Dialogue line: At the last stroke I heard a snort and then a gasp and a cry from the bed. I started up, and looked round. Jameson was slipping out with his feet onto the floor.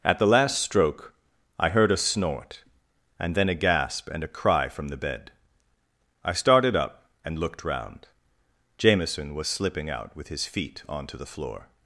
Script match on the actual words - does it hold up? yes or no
yes